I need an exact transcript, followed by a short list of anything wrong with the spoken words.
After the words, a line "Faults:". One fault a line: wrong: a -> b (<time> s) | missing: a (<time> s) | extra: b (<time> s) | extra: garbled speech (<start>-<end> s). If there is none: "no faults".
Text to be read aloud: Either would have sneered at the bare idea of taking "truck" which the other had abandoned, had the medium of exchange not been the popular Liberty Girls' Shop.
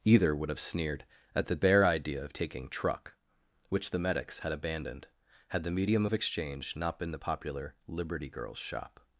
Either would have sneered at the bare idea of taking "truck" which the medics had abandoned, had the medium of exchange not been the popular Liberty Girls' Shop.
Faults:
wrong: other -> medics (4.0 s)